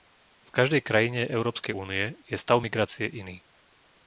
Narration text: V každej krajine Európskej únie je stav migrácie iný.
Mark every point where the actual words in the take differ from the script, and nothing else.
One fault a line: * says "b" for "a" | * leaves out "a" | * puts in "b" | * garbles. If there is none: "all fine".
all fine